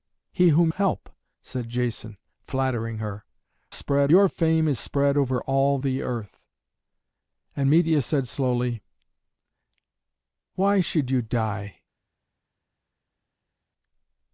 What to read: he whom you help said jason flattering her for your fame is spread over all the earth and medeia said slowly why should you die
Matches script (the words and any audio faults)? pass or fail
fail